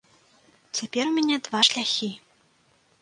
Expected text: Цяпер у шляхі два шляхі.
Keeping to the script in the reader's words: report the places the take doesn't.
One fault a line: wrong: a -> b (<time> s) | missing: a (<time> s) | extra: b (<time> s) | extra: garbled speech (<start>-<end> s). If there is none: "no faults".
wrong: шляхі -> мяне (1.2 s)